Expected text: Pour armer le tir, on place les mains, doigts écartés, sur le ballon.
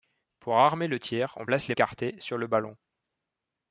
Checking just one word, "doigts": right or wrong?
wrong